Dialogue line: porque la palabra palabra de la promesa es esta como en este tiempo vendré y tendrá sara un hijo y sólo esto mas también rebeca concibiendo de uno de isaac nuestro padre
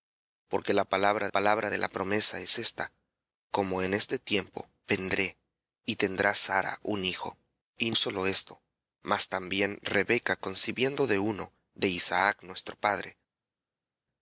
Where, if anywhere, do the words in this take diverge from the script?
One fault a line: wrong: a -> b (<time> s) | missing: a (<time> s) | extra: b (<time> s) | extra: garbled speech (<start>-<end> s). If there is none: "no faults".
no faults